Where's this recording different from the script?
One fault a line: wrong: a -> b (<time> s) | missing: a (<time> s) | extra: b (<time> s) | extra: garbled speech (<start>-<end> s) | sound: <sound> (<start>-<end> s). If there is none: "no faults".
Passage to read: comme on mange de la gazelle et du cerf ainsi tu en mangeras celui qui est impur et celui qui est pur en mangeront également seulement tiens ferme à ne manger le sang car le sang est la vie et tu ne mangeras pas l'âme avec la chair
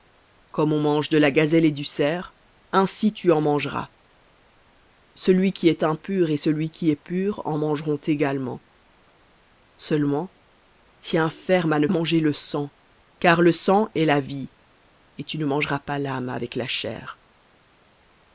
no faults